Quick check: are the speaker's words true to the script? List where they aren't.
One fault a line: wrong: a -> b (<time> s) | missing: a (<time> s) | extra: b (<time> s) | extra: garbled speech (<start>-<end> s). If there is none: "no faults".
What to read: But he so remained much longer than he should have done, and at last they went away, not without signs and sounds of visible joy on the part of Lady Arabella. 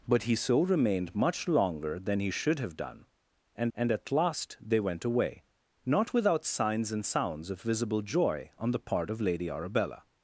extra: and (3.7 s)